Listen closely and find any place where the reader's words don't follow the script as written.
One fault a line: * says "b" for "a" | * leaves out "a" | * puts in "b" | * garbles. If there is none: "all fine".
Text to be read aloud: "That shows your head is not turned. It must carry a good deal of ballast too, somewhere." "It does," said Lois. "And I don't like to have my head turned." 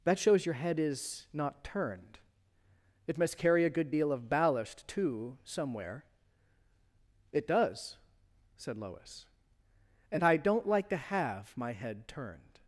all fine